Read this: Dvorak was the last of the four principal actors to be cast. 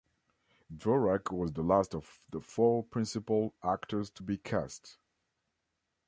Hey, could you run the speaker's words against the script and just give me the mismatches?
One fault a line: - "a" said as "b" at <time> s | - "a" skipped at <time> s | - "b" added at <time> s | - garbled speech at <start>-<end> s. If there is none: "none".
none